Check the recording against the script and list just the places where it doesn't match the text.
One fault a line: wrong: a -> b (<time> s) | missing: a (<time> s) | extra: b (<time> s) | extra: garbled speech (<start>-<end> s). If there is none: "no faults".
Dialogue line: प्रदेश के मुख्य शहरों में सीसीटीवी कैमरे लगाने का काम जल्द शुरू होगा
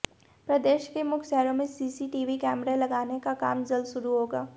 no faults